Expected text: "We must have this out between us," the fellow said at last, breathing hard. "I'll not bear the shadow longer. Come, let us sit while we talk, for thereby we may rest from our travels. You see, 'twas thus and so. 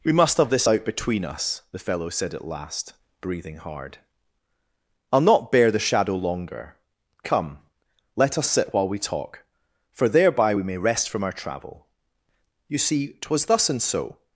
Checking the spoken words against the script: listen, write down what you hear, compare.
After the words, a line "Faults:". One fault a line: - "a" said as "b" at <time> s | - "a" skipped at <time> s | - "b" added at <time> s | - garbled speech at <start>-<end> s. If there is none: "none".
"We must have this out between us," the fellow said at last, breathing hard. "I'll not bear the shadow longer. Come, let us sit while we talk, for thereby we may rest from our travel. You see, 'twas thus and so.
Faults:
- "travels" said as "travel" at 11.3 s